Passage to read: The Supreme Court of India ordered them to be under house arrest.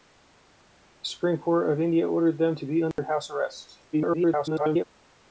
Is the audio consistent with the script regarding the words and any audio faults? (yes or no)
no